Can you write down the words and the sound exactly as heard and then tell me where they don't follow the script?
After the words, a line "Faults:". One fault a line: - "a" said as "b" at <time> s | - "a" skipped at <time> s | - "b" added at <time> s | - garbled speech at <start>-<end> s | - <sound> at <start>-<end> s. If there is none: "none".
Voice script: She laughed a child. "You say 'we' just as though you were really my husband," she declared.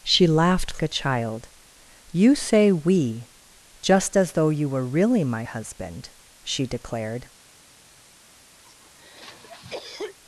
She laughed a child. "You say 'we' just as though you were really my husband," she declared.
Faults:
- cough at 8.6-10.2 s